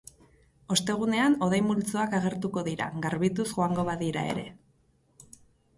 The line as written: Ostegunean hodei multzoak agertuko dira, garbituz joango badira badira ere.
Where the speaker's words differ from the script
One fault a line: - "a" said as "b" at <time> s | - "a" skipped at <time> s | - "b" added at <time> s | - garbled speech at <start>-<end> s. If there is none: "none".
- "badira" skipped at 4.3 s